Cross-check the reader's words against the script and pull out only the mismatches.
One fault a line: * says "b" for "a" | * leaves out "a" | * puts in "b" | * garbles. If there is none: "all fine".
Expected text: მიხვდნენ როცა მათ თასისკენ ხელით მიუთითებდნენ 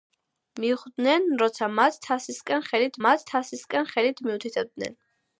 * puts in "მათ თასისკენ ხელით"